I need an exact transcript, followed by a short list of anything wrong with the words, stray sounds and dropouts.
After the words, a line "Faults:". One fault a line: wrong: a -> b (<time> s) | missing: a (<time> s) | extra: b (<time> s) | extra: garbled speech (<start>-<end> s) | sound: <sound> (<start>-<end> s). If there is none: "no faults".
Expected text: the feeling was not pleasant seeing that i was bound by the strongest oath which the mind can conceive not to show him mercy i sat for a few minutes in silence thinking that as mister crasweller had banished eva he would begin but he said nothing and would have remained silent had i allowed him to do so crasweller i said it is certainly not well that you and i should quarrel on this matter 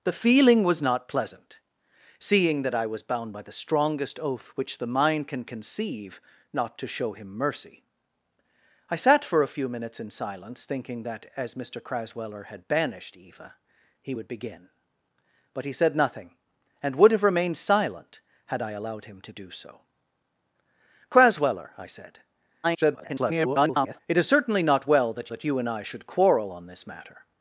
the feeling was not pleasant seeing that i was bound by the strongest oath which the mind can conceive not to show him mercy i sat for a few minutes in silence thinking that as mister crasweller had banished eva he would begin but he said nothing and would have remained silent had i allowed him to do so crasweller i said [garbled] it is certainly not well that that you and i should quarrel on this matter
Faults:
extra: garbled speech (22.6-24.0 s)
extra: that (25.3 s)